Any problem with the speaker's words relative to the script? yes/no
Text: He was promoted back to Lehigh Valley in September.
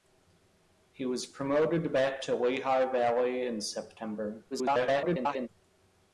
yes